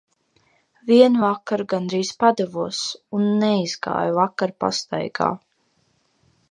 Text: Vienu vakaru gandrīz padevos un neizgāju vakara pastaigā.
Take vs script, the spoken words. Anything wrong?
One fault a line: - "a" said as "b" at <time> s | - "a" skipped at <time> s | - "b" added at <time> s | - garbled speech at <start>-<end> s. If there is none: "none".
none